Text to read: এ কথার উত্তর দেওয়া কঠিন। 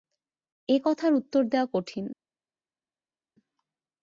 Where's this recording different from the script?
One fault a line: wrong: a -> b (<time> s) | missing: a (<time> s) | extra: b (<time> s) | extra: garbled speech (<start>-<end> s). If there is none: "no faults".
no faults